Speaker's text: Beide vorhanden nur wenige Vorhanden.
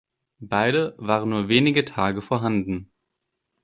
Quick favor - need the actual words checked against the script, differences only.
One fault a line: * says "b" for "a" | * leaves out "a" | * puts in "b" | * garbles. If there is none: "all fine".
* says "waren" for "vorhanden"
* puts in "Tage"